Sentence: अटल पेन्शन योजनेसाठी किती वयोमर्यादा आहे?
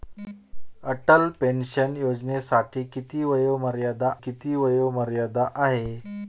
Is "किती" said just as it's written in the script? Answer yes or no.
yes